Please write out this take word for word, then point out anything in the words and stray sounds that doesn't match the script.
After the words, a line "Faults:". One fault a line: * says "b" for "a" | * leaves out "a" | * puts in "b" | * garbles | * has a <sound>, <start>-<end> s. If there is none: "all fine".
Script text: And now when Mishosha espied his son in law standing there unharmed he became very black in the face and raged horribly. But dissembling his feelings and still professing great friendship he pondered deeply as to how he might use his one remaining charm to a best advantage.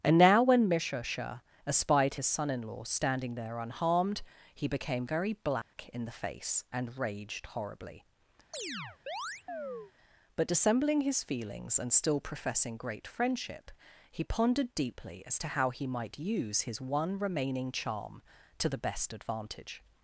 And now when Mishosha espied his son in law standing there unharmed he became very black in the face and raged horribly. But dissembling his feelings and still professing great friendship he pondered deeply as to how he might use his one remaining charm to the best advantage.
Faults:
* has a dropout, 5.6-5.7 s
* has a chirp, 8.5-9.9 s
* says "the" for "a"